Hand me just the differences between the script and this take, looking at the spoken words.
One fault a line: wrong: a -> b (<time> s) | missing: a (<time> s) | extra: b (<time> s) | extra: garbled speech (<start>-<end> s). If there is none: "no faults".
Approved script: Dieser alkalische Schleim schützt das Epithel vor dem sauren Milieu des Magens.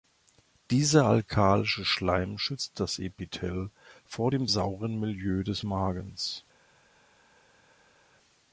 no faults